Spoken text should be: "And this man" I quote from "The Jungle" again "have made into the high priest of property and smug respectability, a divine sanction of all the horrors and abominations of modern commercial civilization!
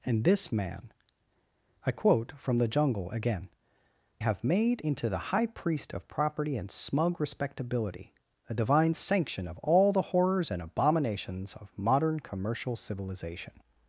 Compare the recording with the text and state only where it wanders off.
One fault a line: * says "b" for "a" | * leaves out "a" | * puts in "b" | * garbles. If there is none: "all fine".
all fine